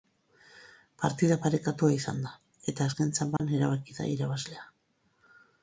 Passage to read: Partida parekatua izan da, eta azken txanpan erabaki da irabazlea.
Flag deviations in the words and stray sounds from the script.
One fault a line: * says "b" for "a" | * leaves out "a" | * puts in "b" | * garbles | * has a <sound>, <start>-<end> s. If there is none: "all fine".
* has a dropout, 3.4-3.4 s